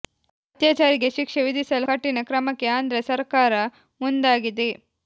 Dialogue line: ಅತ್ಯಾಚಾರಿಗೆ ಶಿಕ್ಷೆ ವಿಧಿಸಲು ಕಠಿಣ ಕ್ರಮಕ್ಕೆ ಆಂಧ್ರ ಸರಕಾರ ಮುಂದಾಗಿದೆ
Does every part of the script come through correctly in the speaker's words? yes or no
yes